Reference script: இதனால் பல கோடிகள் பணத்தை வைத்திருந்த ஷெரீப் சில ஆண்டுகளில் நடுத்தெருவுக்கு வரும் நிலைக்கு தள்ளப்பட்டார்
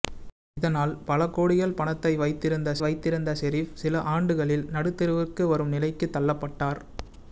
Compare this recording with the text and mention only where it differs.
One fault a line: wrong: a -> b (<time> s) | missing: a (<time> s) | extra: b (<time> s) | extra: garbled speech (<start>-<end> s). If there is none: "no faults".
extra: வைத்திருந்த (2.8 s)